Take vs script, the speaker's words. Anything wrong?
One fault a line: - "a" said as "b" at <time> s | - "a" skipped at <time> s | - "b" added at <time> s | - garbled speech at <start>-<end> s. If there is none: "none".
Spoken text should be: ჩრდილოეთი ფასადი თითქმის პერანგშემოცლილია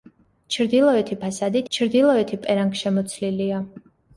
- "თითქმის" said as "ჩრდილოეთი" at 1.7 s